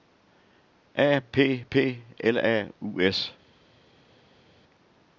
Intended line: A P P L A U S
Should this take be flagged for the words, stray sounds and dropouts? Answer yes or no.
no